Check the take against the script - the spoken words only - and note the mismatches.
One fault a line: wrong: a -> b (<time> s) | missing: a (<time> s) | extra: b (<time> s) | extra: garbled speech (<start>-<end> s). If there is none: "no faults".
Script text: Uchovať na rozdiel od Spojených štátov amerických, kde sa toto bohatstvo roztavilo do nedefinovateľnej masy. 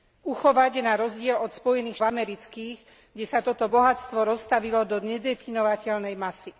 missing: štátov (2.0 s)